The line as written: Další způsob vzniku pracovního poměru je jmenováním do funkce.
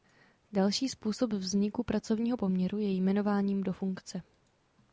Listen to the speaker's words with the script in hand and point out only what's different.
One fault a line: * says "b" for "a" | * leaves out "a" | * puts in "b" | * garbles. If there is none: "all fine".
all fine